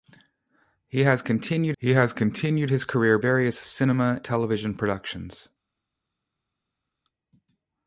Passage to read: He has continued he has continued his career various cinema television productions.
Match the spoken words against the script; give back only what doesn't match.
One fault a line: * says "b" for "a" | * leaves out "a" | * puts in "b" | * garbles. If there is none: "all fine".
all fine